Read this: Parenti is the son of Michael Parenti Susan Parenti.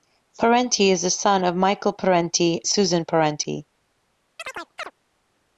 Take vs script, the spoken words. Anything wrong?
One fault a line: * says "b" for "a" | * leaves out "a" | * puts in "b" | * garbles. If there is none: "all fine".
all fine